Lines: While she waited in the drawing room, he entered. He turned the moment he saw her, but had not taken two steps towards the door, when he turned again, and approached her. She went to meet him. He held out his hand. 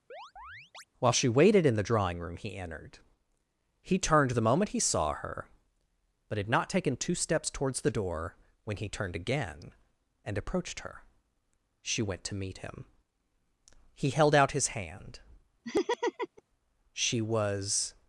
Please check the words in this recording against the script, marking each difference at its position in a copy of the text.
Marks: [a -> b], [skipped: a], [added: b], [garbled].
While she waited in the drawing room, he entered. He turned the moment he saw her, but had not taken two steps towards the door, when he turned again, and approached her. She went to meet him. He held out his hand. [added: She was]